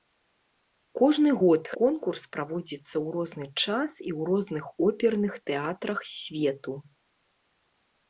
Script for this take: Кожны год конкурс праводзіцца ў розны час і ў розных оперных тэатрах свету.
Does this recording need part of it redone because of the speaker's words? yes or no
no